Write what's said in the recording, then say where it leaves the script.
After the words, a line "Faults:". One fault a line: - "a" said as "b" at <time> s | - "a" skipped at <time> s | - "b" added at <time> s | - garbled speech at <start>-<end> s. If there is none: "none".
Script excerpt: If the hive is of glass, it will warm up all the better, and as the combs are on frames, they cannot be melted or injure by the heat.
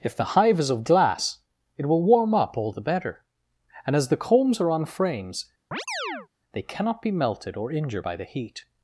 If the hive is of glass, it will warm up all the better, and as the combs are on frames, they cannot be melted or injure by the heat.
Faults:
none